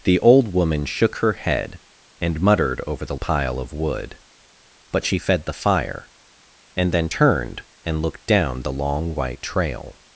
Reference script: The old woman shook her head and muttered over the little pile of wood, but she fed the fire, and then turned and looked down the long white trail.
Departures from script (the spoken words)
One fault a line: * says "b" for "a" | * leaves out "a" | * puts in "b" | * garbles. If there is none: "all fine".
* leaves out "little"